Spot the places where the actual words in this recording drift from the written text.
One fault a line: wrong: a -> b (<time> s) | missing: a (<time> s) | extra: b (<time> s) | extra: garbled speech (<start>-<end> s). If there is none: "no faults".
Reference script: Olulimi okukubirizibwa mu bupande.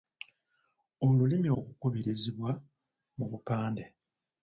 no faults